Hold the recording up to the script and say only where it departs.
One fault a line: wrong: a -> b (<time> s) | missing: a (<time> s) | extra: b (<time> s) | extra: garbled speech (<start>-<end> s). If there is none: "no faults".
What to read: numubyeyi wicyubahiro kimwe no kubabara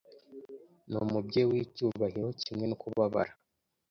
no faults